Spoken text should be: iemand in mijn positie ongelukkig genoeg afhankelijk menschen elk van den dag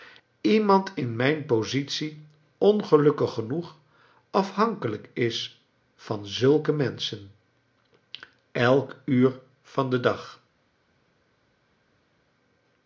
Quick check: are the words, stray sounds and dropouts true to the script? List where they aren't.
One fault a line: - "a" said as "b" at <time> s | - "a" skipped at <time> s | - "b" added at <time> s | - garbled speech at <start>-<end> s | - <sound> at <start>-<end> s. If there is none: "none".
- "is van zulke" added at 5.1 s
- "uur" added at 9.0 s